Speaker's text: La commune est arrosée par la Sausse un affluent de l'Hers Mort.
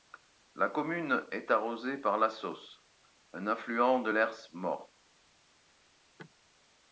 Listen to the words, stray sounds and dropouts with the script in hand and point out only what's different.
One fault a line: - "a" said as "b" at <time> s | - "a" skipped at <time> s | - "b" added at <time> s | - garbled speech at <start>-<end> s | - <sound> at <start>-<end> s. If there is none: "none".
none